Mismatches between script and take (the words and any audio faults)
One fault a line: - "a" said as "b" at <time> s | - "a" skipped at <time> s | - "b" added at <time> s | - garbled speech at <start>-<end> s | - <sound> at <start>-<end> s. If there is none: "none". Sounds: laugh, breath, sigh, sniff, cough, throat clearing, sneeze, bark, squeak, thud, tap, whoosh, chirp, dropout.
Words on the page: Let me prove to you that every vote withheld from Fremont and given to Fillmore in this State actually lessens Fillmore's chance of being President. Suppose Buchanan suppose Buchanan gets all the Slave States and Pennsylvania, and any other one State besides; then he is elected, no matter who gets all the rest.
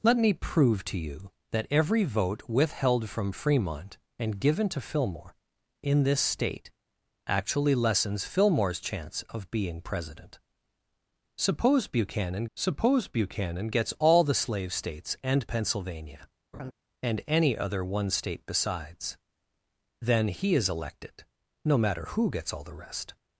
- laugh at 16.5-16.7 s